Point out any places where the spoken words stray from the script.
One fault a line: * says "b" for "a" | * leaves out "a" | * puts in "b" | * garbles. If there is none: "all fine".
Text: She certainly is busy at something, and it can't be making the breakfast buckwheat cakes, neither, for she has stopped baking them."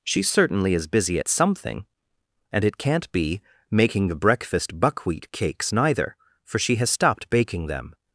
all fine